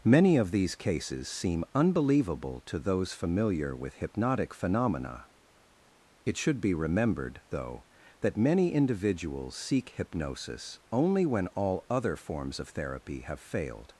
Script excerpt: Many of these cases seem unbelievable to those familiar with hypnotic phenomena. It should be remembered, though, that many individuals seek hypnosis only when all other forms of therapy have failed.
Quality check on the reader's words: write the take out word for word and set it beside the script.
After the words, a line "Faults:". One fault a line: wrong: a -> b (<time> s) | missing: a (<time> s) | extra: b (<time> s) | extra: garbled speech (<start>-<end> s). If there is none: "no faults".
Many of these cases seem unbelievable to those familiar with hypnotic phenomena. It should be remembered, though, that many individuals seek hypnosis only when all other forms of therapy have failed.
Faults:
no faults